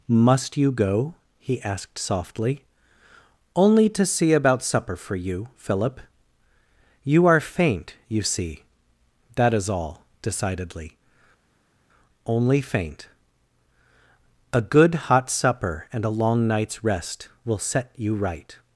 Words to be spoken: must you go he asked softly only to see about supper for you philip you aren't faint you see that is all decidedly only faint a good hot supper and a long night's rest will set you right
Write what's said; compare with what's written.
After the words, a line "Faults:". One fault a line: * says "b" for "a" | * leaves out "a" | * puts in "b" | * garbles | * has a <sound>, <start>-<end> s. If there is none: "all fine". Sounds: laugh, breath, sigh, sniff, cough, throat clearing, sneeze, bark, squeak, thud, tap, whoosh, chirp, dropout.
must you go he asked softly only to see about supper for you philip you are faint you see that is all decidedly only faint a good hot supper and a long night's rest will set you right
Faults:
* says "are" for "aren't"